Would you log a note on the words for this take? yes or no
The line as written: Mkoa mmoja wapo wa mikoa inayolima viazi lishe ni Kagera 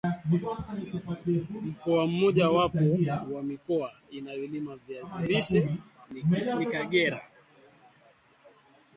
no